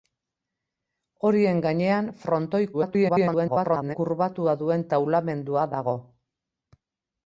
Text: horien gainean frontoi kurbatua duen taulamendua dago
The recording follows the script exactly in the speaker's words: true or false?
false